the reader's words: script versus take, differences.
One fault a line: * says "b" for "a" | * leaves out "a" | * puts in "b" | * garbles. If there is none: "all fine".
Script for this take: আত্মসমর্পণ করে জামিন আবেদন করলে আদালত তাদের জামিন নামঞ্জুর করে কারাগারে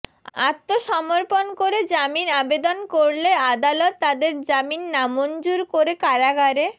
all fine